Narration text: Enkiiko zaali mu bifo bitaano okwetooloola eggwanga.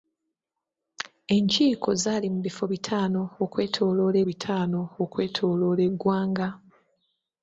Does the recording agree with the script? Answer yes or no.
no